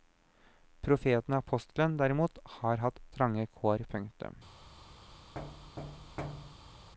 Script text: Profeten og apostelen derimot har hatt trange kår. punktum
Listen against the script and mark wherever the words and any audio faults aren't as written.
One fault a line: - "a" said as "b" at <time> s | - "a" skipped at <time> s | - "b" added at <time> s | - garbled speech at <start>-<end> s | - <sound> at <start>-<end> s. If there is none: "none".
- thud at 5.3-6.9 s